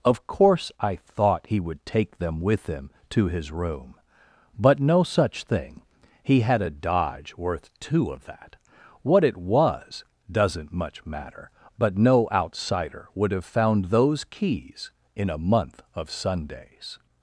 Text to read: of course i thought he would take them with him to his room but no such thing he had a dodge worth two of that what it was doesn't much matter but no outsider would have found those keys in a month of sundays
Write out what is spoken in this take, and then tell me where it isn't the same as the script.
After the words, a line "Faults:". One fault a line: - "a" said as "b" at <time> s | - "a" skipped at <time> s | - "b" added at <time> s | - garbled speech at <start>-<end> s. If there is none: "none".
of course i thought he would take them with him to his room but no such thing he had a dodge worth two of that what it was doesn't much matter but no outsider would have found those keys in a month of sundays
Faults:
none